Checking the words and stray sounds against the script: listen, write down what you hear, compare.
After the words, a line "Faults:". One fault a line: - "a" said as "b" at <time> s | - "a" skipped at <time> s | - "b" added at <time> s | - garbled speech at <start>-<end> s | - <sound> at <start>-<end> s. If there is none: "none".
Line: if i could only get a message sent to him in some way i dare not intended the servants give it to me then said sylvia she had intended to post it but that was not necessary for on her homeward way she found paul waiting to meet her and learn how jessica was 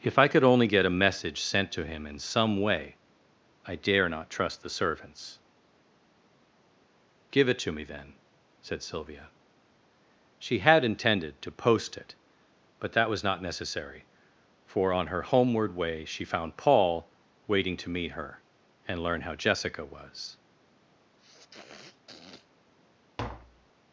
if i could only get a message sent to him in some way i dare not trust the servants give it to me then said sylvia she had intended to post it but that was not necessary for on her homeward way she found paul waiting to meet her and learn how jessica was
Faults:
- "intended" said as "trust" at 4.3 s
- sniff at 21.2-22.5 s
- tap at 23.2-23.7 s